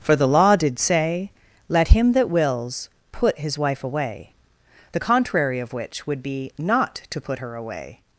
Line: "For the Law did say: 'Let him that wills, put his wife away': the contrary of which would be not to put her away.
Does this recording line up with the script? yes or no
yes